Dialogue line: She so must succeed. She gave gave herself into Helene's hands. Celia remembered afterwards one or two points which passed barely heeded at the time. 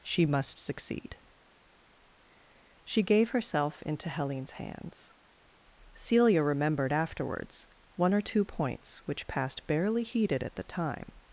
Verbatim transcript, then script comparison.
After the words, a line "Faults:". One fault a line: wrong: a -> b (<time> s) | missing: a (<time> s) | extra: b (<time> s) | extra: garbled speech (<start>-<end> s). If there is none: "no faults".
She must succeed. She gave herself into Helene's hands. Celia remembered afterwards one or two points which passed barely heeded at the time.
Faults:
missing: so (0.2 s)
missing: gave (3.3 s)